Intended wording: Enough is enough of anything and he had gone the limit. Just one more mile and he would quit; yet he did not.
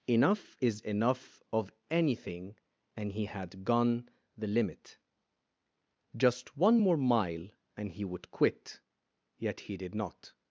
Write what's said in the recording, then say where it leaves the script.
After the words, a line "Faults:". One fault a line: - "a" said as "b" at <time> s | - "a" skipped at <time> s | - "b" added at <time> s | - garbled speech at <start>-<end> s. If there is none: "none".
Enough is enough of anything and he had gone the limit. Just one more mile and he would quit; yet he did not.
Faults:
none